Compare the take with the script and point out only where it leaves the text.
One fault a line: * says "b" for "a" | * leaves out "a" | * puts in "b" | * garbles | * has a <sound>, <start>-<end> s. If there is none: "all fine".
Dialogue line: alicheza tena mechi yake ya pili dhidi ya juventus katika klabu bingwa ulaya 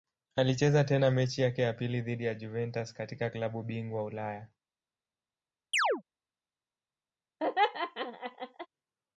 * has a chirp, 5.7-6.0 s
* has a laugh, 7.4-8.7 s